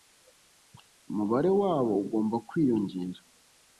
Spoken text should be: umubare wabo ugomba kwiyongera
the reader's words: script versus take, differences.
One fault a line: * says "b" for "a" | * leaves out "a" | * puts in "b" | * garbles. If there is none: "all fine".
all fine